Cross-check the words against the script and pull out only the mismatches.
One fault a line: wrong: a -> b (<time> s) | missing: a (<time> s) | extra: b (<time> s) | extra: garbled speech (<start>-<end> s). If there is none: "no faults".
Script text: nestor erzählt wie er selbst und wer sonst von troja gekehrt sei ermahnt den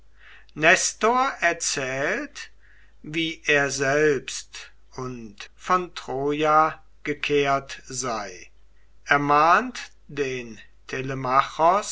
missing: wer sonst (5.3 s)